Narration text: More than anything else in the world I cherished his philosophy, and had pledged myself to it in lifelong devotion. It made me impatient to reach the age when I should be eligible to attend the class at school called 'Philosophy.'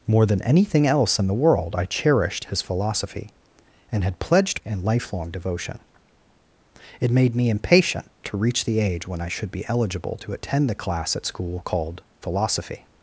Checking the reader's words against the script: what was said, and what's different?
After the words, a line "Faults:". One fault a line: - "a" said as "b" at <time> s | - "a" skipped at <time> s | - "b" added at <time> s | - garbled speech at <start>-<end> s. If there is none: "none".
More than anything else in the world I cherished his philosophy, and had pledged in lifelong devotion. It made me impatient to reach the age when I should be eligible to attend the class at school called 'Philosophy.'
Faults:
- "myself to it" skipped at 4.6 s